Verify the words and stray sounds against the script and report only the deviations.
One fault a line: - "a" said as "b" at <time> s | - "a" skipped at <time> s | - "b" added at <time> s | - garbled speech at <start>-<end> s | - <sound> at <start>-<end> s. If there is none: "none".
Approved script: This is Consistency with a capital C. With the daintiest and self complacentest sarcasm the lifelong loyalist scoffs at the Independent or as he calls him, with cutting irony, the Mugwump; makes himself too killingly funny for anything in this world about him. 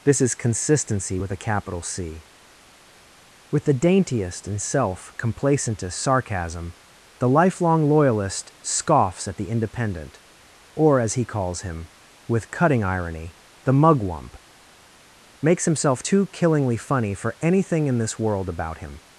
none